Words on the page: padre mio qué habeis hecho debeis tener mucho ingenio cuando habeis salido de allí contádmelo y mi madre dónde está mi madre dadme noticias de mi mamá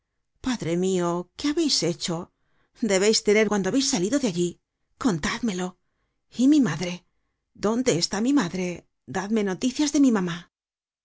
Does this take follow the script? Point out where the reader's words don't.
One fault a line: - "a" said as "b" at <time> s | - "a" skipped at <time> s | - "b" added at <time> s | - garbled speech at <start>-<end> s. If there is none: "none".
- "mucho ingenio" skipped at 3.5 s